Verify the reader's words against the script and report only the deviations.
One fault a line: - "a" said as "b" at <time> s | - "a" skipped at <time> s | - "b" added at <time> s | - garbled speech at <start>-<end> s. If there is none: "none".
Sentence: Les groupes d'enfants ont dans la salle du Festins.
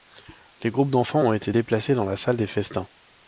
- "été déplacés" added at 1.3 s
- "du" said as "des" at 2.4 s